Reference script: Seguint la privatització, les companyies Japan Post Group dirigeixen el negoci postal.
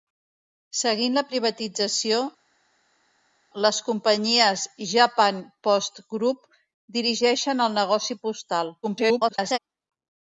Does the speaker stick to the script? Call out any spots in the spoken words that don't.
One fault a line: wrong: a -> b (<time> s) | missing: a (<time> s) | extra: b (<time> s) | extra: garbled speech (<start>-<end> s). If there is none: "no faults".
extra: garbled speech (8.8-9.6 s)